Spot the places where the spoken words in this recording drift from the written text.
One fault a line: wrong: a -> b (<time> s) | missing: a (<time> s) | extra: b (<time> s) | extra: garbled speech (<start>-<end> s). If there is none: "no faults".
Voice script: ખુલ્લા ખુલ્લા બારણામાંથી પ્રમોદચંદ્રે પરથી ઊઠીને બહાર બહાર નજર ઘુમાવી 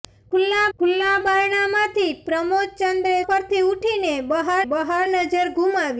no faults